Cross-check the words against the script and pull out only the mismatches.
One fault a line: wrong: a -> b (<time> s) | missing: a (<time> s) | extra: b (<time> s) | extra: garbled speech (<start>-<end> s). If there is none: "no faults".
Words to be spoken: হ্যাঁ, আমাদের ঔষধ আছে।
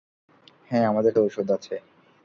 no faults